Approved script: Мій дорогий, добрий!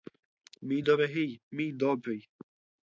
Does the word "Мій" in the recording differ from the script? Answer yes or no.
no